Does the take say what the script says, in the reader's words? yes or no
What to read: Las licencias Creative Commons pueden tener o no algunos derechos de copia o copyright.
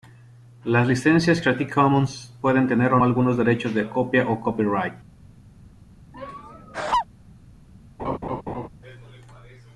no